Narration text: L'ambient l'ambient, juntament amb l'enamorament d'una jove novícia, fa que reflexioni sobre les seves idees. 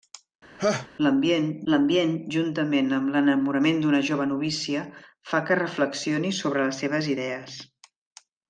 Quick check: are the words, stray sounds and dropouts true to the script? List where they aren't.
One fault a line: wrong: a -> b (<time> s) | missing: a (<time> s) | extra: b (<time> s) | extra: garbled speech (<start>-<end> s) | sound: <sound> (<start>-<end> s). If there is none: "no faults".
sound: laugh (0.6-0.9 s)